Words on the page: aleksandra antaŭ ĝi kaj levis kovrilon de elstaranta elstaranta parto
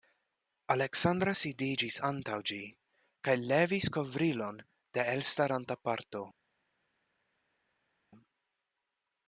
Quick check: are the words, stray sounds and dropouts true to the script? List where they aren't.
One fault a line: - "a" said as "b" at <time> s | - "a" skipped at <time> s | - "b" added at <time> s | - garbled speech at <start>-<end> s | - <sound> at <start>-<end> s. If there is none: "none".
- "sidiĝis" added at 1.4 s
- "elstaranta" skipped at 5.8 s